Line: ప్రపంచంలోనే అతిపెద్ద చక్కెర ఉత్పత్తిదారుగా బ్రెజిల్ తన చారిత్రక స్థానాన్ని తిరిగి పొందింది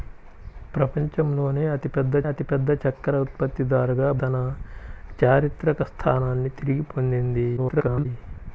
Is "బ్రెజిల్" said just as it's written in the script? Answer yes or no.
no